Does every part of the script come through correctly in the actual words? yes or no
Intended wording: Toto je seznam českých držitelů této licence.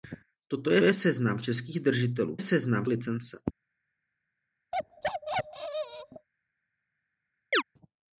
no